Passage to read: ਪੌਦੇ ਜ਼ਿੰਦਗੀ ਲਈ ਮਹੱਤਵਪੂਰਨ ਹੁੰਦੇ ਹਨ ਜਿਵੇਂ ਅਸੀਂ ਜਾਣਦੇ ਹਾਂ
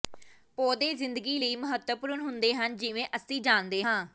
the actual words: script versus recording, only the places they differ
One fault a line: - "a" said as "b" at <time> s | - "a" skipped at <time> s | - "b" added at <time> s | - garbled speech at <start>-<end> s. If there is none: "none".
none